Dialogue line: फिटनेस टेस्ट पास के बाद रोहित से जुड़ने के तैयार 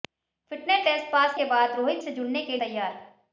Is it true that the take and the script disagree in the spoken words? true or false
false